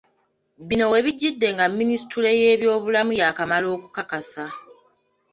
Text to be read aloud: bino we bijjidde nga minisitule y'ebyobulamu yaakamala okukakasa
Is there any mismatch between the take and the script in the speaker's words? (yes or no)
no